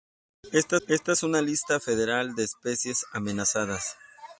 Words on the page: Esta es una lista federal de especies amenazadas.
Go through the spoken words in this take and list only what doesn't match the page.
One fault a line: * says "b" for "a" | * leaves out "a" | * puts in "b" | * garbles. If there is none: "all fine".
* puts in "esta"